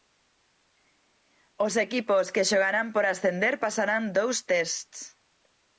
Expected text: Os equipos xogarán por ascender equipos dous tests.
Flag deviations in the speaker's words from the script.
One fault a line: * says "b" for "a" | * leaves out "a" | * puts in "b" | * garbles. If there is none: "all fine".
* puts in "que"
* says "pasarán" for "equipos"